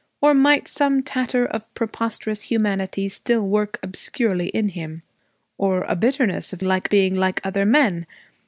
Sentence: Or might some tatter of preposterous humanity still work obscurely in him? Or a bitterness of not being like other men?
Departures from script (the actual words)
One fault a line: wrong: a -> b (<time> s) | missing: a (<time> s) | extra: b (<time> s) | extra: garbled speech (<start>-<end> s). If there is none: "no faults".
wrong: not -> like (6.6 s)